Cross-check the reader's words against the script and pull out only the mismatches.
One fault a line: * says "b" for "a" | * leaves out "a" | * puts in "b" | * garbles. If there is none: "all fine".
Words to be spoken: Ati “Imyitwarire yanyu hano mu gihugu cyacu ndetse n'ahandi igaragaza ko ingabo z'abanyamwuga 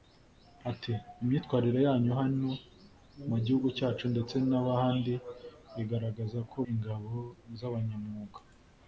all fine